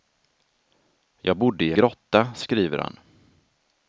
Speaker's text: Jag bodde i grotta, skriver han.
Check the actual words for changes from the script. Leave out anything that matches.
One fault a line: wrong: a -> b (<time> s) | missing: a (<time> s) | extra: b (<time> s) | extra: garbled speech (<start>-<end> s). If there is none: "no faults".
no faults